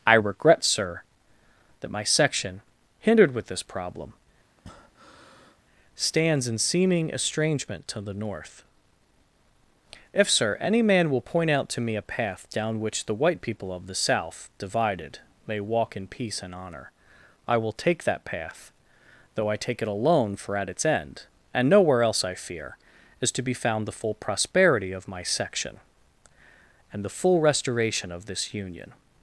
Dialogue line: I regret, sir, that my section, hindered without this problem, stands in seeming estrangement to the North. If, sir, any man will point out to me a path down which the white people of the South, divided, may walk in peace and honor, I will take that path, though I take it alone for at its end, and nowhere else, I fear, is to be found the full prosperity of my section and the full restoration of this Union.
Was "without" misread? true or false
true